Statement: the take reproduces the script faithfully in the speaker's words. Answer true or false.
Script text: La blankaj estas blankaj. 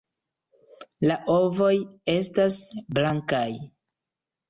false